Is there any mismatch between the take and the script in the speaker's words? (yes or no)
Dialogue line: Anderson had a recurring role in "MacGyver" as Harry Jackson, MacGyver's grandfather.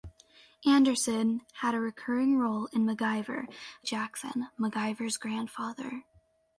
yes